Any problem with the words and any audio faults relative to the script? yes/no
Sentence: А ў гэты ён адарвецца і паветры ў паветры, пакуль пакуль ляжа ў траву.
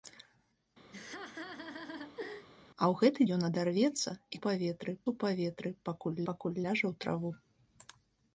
yes